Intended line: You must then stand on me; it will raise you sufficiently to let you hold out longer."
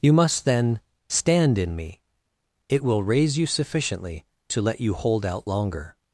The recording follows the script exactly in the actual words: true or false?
false